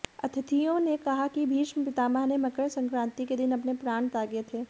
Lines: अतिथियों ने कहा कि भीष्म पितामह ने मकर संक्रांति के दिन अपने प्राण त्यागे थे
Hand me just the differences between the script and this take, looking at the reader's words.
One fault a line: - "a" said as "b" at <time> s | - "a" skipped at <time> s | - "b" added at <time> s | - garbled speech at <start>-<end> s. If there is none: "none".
none